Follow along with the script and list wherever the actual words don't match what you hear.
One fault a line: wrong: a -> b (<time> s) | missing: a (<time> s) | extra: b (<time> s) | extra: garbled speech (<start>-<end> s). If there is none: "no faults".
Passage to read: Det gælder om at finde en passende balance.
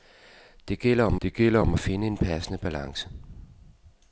extra: det gælder om (1.2 s)